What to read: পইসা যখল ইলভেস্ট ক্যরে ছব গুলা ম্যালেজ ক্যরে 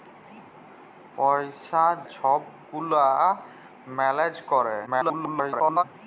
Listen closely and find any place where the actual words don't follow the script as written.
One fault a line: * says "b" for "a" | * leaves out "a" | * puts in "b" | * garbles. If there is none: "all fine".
* leaves out "যখল ইলভেস্ট ক্যরে"
* garbles